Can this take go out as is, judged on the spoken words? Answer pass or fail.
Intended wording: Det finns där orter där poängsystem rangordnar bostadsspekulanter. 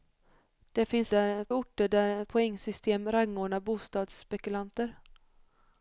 pass